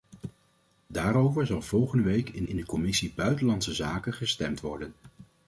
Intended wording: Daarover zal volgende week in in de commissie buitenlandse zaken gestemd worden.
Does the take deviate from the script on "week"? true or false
false